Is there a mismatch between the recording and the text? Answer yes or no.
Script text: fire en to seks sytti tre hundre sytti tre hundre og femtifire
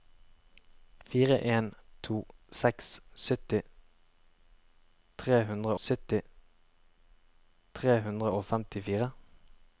no